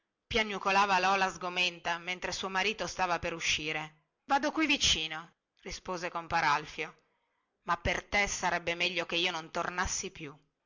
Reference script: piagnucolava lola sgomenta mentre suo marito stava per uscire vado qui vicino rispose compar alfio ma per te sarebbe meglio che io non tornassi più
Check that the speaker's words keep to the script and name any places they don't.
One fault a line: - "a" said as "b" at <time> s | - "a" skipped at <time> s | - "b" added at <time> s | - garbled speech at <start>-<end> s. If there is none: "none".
none